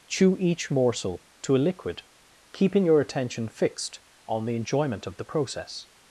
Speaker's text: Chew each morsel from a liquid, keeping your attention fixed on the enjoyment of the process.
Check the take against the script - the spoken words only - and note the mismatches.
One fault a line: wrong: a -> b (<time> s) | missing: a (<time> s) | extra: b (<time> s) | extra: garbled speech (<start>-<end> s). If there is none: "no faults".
wrong: from -> to (1.4 s)